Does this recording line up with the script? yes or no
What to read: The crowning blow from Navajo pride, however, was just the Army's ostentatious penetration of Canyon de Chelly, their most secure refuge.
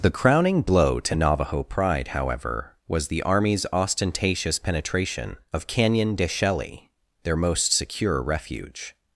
no